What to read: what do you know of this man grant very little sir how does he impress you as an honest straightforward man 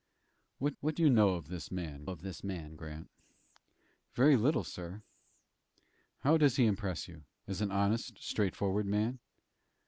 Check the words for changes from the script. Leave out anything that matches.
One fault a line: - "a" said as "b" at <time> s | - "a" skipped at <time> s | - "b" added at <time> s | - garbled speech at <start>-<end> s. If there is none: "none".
- "what" added at 0.8 s
- "of this man" added at 2.0 s